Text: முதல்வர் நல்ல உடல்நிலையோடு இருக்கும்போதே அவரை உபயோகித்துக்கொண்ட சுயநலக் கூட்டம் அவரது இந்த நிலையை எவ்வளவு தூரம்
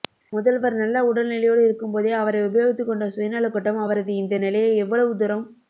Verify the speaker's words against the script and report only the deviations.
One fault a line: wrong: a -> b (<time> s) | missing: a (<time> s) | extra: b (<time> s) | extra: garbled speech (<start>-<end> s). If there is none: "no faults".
no faults